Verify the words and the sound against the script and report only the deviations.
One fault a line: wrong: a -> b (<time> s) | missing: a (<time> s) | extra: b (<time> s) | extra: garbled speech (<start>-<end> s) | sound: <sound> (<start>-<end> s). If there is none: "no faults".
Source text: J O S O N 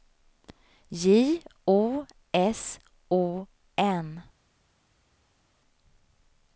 no faults